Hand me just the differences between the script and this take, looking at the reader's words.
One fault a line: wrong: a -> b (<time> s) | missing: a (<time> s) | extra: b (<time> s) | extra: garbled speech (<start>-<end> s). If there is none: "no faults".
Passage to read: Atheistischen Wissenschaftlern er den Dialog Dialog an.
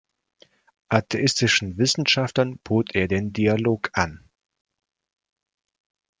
extra: bot (2.6 s)
missing: Dialog (3.9 s)